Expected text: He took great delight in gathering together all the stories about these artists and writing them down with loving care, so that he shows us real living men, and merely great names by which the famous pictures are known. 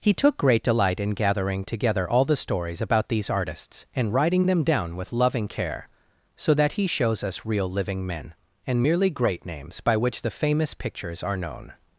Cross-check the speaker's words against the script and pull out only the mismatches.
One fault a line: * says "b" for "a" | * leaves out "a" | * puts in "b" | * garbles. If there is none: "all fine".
all fine